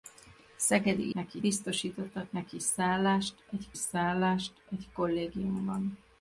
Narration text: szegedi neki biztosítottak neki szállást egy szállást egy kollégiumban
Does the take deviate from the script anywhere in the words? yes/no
no